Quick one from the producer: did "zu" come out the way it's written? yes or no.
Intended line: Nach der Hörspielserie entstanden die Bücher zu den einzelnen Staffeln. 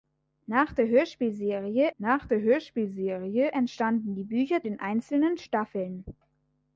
no